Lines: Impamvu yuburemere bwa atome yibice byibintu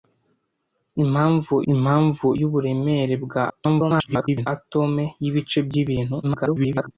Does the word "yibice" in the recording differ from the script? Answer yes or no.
no